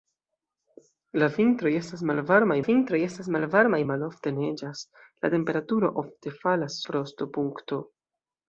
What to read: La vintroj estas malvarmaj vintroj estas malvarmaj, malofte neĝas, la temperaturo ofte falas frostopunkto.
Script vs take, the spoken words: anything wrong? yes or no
no